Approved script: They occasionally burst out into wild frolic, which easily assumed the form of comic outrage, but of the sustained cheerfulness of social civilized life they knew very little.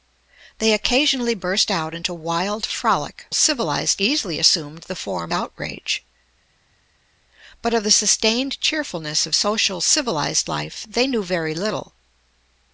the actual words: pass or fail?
fail